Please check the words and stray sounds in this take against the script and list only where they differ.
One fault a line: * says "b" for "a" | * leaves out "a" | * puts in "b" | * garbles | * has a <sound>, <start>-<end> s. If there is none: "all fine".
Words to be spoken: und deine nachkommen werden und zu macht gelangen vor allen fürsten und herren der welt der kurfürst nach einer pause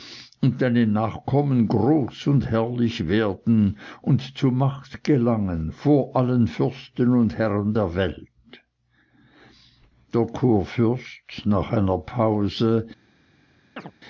* puts in "groß und herrlich"
* has a chirp, 13.8-13.9 s